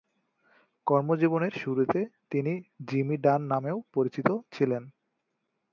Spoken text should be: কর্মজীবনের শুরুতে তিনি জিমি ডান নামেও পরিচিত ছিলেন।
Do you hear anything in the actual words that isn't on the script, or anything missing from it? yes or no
no